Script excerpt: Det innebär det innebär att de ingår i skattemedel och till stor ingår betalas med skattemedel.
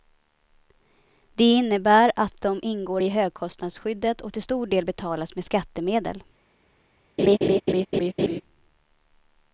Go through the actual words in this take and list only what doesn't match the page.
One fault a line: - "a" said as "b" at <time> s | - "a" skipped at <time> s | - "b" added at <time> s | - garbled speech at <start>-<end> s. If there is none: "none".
- "det innebär" skipped at 2.1 s
- "skattemedel" said as "högkostnadsskyddet" at 3.1 s
- "ingår" said as "del" at 4.7 s